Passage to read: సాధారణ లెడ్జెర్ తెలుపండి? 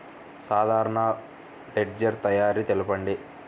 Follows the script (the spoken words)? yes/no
no